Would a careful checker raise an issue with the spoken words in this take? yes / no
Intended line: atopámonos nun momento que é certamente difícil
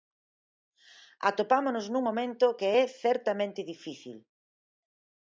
no